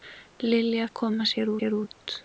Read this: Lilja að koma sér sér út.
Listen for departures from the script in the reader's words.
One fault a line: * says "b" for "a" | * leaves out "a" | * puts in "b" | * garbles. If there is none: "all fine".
all fine